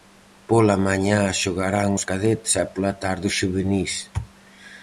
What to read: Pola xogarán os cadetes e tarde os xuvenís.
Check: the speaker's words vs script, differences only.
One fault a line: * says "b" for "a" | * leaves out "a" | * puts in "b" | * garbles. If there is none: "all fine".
* puts in "mañá"
* puts in "pola"